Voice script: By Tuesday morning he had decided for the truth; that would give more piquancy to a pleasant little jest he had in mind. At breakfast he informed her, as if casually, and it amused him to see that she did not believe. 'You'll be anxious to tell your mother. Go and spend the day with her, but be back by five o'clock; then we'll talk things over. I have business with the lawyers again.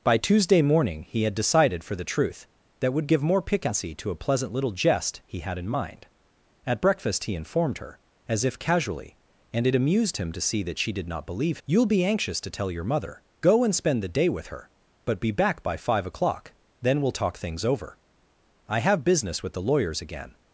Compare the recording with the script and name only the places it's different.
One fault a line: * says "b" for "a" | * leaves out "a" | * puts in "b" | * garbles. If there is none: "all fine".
all fine